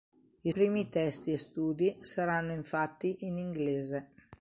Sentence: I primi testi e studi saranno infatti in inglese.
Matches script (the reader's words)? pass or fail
pass